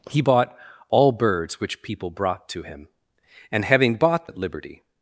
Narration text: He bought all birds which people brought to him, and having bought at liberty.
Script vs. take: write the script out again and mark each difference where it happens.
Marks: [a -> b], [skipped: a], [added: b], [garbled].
He bought all birds which people brought to him, and having bought at liberty.